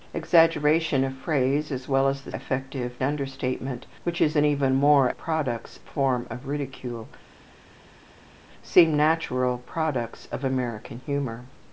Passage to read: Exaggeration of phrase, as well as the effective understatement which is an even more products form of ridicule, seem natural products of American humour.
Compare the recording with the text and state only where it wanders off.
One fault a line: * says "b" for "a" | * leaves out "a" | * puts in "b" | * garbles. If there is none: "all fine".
all fine